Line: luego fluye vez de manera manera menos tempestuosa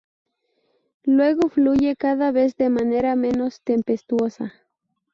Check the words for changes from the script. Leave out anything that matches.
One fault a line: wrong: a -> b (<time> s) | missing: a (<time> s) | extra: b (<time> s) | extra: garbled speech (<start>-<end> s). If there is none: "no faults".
extra: cada (1.9 s)
missing: manera (3.1 s)